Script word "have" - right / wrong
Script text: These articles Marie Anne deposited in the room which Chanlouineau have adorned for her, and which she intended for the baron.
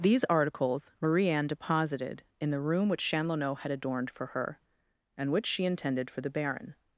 wrong